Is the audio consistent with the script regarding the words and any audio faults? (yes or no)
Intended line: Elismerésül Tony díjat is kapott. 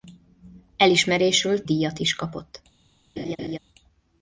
no